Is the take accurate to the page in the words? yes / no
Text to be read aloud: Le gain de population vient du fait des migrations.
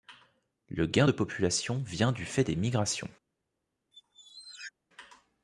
yes